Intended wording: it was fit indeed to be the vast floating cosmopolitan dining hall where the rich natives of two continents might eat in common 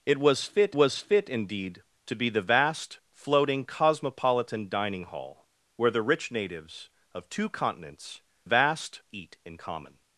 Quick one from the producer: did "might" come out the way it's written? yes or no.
no